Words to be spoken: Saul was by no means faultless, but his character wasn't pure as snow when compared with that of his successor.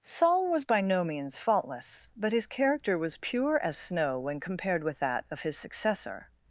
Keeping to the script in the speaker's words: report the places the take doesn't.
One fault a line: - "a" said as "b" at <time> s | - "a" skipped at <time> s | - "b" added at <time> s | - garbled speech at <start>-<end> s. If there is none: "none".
- "wasn't" said as "was" at 3.0 s